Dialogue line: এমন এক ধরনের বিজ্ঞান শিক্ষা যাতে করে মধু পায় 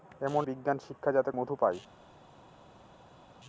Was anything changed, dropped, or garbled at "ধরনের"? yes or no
yes